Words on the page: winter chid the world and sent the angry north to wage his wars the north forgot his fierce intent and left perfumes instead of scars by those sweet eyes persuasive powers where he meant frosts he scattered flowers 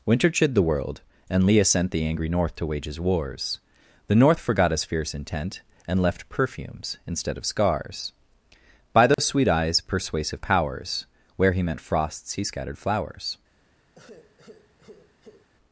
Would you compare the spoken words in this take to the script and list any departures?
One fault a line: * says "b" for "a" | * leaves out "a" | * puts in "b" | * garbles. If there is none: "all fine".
* puts in "leah"